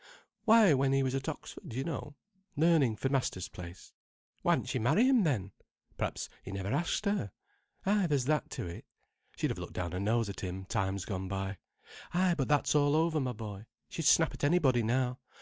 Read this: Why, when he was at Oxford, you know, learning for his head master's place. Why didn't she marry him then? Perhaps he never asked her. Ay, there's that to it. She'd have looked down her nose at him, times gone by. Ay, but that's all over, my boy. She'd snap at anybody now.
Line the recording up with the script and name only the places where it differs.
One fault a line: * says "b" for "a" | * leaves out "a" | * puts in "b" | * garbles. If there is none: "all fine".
* leaves out "his head"